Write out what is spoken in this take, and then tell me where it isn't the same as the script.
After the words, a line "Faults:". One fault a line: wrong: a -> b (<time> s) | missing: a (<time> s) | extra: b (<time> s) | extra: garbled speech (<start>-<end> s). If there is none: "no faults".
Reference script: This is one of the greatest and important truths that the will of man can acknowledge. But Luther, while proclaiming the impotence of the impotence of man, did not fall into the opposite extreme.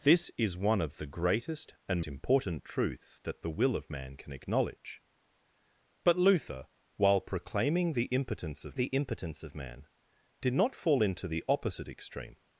This is one of the greatest and important truths that the will of man can acknowledge. But Luther, while proclaiming the impotence of the impotence of man, did not fall into the opposite extreme.
Faults:
no faults